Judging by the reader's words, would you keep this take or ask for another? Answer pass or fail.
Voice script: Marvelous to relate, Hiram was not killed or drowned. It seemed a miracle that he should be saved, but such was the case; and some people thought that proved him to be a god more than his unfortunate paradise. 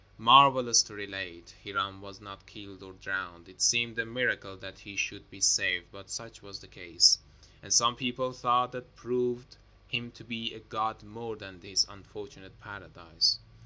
pass